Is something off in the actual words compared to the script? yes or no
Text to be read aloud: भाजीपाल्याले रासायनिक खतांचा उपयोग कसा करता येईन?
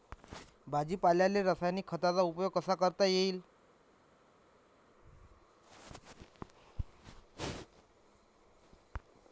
no